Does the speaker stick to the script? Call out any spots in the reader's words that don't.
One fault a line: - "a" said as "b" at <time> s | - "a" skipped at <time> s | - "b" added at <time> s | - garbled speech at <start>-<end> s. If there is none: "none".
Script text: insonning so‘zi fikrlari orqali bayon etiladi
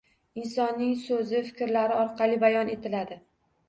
none